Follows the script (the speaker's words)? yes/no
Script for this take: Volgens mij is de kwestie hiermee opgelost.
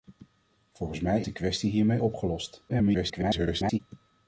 no